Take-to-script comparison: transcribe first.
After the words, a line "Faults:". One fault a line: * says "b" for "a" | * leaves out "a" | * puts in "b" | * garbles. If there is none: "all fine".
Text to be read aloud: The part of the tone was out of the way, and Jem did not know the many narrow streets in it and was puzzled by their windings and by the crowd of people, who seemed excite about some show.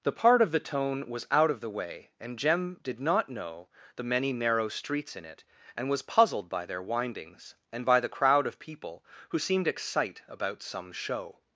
The part of the tone was out of the way, and Jem did not know the many narrow streets in it and was puzzled by their windings and by the crowd of people, who seemed excite about some show.
Faults:
all fine